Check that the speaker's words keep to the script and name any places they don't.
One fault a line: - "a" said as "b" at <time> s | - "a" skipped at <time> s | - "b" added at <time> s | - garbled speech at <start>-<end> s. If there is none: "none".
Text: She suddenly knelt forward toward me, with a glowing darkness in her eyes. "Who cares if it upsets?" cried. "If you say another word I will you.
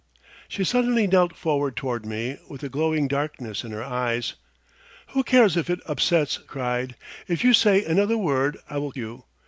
none